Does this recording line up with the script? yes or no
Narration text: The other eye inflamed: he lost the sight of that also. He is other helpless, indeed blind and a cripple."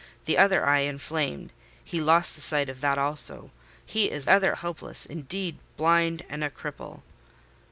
yes